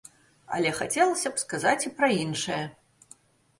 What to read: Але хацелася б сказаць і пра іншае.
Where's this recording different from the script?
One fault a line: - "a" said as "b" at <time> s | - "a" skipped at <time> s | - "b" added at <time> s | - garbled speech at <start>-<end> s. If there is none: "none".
none